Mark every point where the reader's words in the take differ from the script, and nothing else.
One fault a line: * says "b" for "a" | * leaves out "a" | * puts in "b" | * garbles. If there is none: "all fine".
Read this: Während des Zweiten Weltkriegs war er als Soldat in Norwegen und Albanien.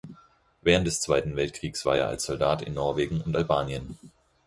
all fine